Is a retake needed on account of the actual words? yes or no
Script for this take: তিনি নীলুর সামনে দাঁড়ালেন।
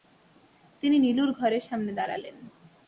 yes